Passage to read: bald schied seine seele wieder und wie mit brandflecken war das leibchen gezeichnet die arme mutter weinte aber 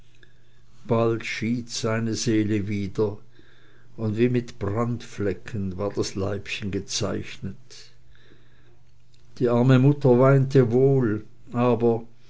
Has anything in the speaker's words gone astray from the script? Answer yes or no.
yes